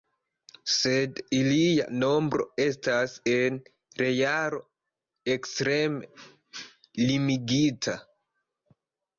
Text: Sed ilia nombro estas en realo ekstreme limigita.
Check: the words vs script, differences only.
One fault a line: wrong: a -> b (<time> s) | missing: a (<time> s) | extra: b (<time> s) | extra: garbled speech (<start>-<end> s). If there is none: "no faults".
no faults